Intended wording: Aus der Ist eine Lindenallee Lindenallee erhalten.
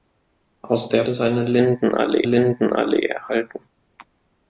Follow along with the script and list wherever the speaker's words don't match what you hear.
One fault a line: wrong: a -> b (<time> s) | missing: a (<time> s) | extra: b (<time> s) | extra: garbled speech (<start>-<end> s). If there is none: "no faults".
no faults